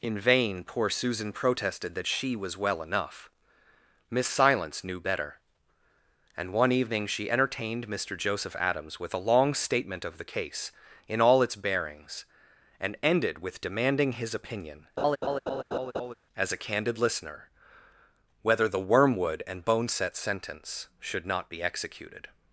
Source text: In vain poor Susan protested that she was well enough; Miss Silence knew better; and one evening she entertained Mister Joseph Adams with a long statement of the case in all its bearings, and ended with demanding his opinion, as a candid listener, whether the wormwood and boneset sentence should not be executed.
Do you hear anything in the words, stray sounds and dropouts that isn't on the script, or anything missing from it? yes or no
yes